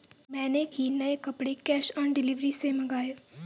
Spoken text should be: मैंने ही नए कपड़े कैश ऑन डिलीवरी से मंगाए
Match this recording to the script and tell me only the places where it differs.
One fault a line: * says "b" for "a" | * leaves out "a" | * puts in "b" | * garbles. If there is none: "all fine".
all fine